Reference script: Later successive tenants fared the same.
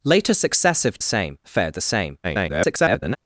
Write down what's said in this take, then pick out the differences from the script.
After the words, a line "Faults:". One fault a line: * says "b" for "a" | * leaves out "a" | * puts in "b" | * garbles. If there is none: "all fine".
Later successive same fared the same. [garbled]
Faults:
* says "same" for "tenants"
* garbles